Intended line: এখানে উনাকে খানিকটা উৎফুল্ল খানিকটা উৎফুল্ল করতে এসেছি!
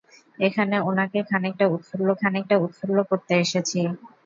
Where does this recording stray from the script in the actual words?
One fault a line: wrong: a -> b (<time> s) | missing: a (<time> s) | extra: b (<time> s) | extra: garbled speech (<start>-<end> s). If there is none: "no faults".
no faults